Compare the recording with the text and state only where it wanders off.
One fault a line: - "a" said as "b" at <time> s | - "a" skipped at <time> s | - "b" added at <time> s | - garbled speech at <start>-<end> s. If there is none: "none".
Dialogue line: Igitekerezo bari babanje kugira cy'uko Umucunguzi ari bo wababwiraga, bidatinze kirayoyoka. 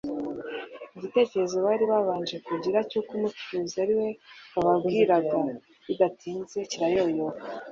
- "bo" said as "we" at 4.0 s